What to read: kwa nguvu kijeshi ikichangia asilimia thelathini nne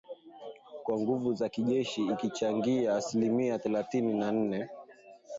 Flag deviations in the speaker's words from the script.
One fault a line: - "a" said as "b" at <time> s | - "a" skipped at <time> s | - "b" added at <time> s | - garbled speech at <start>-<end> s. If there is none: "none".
- "za" added at 1.3 s
- "na" added at 4.1 s